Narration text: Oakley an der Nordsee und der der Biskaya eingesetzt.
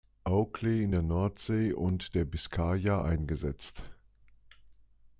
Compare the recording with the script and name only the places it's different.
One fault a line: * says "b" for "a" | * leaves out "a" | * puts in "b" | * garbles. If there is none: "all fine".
* says "in" for "an"
* leaves out "der"